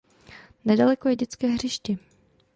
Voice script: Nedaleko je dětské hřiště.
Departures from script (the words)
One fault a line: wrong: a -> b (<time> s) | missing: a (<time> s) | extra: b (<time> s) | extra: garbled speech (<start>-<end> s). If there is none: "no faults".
no faults